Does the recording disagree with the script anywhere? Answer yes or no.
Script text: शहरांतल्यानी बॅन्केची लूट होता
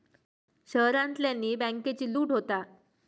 no